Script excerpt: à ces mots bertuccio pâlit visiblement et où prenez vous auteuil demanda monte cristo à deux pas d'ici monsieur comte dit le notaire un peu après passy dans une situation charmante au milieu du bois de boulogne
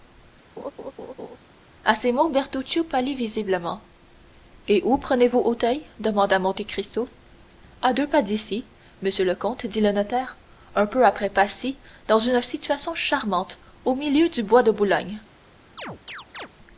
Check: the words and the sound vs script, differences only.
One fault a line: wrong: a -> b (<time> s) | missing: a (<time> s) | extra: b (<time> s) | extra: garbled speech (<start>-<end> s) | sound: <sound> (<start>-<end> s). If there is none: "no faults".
sound: laugh (0.6-1.4 s)
extra: le (9.2 s)
sound: chirp (15.8-16.5 s)